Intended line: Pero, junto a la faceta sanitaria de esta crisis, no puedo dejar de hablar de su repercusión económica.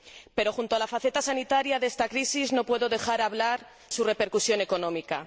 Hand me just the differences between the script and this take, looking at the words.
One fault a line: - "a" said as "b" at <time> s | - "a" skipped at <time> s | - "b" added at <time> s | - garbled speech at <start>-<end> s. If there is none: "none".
- "de" skipped at 3.7 s